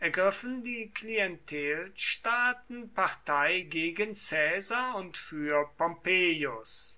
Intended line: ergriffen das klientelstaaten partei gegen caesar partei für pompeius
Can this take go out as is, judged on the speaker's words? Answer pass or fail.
fail